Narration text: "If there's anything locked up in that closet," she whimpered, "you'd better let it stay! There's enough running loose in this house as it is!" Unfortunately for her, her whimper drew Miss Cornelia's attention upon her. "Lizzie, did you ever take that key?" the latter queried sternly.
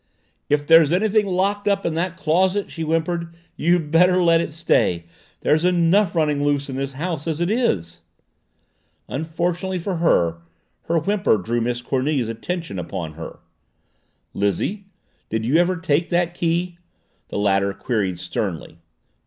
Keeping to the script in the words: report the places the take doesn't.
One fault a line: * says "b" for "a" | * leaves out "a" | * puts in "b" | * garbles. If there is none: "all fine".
all fine